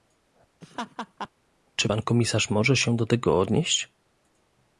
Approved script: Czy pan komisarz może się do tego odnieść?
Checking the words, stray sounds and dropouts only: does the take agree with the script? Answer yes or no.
no